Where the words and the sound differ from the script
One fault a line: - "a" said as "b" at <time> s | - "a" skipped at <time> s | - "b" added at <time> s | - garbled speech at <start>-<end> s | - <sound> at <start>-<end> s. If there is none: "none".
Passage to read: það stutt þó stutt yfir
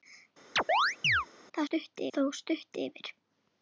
- chirp at 0.6-1.3 s